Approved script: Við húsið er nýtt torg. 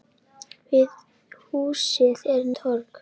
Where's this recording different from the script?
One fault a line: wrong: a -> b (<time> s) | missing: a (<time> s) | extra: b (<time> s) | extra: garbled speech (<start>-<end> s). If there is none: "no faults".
missing: nýtt (2.5 s)